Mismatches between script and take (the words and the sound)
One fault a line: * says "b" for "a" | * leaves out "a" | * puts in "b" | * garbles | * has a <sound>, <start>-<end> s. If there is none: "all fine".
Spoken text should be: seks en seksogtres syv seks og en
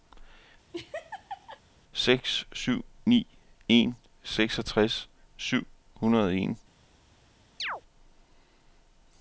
* has a laugh, 0.7-1.6 s
* puts in "syv ni"
* says "hundrede" for "seks"
* has a chirp, 7.6-7.8 s